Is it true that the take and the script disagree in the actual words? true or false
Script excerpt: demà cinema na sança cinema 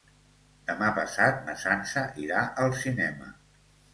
true